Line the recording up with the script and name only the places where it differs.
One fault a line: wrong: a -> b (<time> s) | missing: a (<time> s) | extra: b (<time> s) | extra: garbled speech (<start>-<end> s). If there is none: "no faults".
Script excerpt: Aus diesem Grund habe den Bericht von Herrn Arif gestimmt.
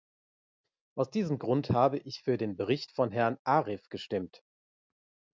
extra: ich für (2.0 s)